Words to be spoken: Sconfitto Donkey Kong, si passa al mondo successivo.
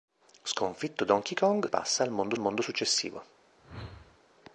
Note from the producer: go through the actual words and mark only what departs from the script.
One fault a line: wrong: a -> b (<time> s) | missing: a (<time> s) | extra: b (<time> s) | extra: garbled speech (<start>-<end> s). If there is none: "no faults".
missing: si (1.7 s)
extra: mondo (2.4 s)